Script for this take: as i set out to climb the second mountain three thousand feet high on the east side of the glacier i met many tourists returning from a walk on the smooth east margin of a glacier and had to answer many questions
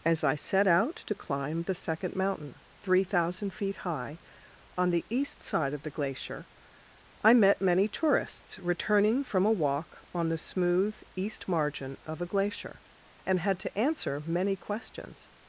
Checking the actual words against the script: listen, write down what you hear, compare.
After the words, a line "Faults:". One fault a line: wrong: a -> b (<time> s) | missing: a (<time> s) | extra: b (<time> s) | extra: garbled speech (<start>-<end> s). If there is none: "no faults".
as i set out to climb the second mountain three thousand feet high on the east side of the glacier i met many tourists returning from a walk on the smooth east margin of a glacier and had to answer many questions
Faults:
no faults